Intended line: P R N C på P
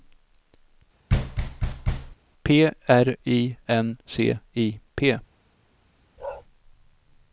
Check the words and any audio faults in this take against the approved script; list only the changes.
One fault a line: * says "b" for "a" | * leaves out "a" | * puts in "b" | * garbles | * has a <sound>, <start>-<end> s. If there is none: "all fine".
* has a thud, 1.1-2.2 s
* puts in "I"
* says "I" for "på"
* has a bark, 6.2-6.4 s